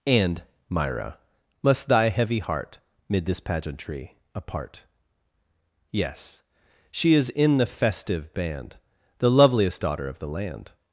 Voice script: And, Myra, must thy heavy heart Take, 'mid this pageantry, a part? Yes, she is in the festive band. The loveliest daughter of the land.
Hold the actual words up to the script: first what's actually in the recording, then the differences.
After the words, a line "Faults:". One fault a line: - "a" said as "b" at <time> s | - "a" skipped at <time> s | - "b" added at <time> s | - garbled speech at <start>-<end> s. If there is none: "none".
And, Myra, must thy heavy heart 'Mid this pageantry, a part? Yes, she is in the festive band. The loveliest daughter of the land.
Faults:
- "Take" skipped at 2.8 s